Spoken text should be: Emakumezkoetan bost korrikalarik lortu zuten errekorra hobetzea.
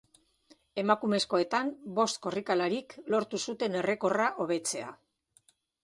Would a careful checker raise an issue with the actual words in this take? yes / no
no